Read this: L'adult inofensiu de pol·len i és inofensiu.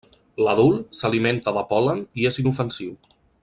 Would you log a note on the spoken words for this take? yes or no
yes